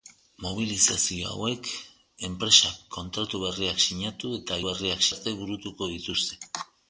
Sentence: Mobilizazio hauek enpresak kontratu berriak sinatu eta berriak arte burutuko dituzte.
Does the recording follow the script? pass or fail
pass